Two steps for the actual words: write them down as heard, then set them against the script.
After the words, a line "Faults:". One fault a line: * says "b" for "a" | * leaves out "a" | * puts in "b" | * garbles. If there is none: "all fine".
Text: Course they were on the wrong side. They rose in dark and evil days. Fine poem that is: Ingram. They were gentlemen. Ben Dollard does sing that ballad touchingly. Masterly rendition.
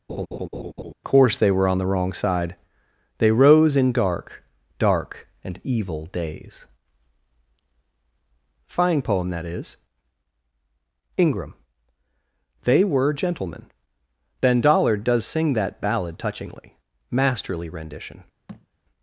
Course they were on the wrong side. They rose in dark dark and evil days. Fine poem that is: Ingram. They were gentlemen. Ben Dollard does sing that ballad touchingly. Masterly rendition.
Faults:
* puts in "dark"